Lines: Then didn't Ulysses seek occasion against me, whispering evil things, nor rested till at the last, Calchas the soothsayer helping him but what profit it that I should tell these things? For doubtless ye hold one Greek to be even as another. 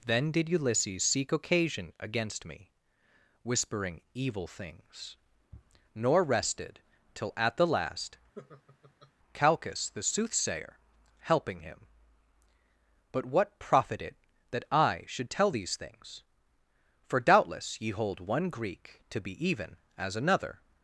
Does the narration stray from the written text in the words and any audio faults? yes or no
yes